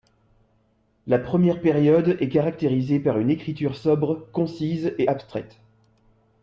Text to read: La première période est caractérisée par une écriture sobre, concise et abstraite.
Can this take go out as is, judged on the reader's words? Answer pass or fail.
pass